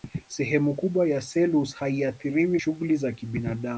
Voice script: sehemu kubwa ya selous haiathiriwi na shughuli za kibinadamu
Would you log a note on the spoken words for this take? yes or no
yes